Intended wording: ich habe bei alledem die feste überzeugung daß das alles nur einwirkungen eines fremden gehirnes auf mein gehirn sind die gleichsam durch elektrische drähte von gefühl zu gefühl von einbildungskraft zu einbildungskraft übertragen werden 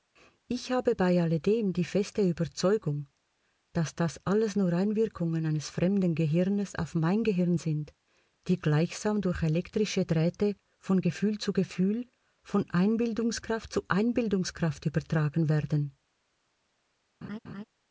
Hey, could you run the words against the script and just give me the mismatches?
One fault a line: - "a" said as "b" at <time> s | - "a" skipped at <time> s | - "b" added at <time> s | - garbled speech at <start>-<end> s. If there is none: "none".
none